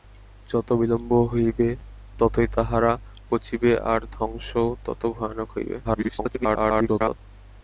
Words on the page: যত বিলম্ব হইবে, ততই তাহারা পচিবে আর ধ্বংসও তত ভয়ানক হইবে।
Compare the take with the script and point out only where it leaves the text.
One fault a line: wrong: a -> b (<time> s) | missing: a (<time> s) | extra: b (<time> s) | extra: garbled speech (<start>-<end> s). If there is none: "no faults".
extra: garbled speech (5.8-7.2 s)